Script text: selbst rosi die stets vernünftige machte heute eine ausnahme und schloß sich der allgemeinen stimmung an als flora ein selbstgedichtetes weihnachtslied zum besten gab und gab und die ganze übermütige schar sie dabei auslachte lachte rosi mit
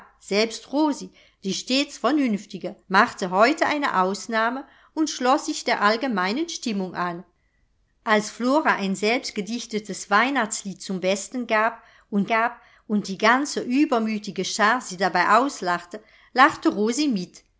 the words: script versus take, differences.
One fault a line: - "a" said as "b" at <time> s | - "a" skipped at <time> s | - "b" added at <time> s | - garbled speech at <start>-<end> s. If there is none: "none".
none